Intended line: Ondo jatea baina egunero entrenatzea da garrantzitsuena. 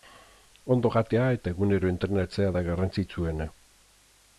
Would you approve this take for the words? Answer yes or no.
no